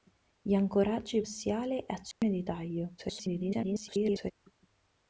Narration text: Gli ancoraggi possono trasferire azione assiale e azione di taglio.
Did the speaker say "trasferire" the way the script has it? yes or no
no